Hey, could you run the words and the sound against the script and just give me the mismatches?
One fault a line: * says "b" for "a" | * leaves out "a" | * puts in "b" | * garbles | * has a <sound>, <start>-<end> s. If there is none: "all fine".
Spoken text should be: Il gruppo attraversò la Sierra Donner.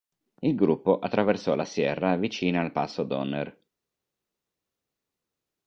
* puts in "vicina al Passo"